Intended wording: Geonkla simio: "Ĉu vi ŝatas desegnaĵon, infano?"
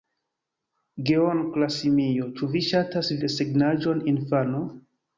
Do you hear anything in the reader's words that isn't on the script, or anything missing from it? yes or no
no